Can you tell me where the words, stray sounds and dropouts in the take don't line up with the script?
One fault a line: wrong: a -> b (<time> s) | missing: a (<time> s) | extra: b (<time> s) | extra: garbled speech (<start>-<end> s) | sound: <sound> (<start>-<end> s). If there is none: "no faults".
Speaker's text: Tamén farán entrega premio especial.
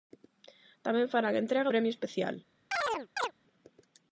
sound: chirp (2.7-3.3 s)